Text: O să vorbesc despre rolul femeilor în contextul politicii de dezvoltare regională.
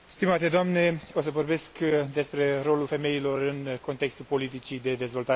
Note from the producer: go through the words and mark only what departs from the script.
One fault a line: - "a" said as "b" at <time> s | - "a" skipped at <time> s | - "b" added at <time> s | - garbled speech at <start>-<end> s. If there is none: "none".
none